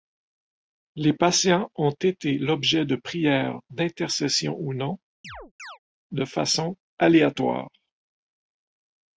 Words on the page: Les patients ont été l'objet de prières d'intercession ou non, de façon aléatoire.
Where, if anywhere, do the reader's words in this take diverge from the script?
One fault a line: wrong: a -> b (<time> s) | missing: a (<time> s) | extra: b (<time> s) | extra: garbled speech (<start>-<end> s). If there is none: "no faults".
no faults